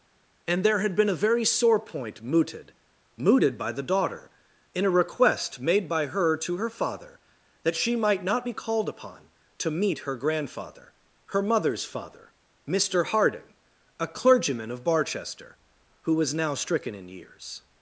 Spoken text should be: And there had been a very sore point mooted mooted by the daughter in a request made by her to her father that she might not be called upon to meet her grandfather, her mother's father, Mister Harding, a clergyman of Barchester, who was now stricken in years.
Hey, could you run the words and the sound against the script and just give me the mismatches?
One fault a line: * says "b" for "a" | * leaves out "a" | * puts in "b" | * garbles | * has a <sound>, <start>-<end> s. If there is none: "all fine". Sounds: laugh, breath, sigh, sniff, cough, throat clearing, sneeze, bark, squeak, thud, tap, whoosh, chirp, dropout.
all fine